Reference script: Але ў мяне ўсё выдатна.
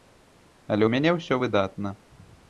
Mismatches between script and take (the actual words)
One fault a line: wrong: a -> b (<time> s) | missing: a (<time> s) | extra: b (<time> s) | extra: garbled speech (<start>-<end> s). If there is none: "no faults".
no faults